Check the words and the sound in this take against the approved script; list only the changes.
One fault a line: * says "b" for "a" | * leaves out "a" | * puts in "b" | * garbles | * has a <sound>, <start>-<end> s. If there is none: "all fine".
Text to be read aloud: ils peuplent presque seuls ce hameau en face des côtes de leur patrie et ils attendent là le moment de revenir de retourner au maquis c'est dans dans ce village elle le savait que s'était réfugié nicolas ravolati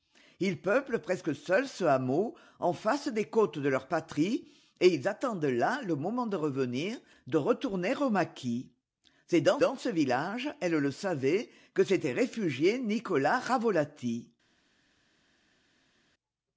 all fine